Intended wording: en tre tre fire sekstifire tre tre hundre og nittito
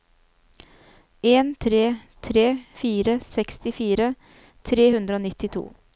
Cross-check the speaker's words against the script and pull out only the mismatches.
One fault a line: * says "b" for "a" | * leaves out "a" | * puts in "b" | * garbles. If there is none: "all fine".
* leaves out "tre"